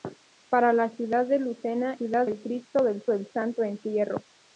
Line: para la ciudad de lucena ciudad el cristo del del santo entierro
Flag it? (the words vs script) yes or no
no